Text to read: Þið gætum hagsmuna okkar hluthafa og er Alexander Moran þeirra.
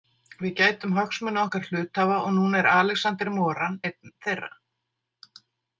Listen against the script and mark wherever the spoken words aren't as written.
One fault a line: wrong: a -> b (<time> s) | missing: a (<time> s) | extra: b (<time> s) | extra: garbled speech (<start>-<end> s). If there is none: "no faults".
wrong: Þið -> Við (0.4 s)
extra: núna (2.4 s)
extra: einn (3.9 s)